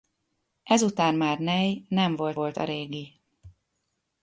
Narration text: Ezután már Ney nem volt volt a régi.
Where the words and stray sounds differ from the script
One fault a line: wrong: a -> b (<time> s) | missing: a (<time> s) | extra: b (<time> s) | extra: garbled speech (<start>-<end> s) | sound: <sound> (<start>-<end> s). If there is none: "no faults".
no faults